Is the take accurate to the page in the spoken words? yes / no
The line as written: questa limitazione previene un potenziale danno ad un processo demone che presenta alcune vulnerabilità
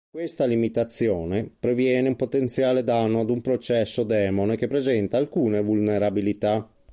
yes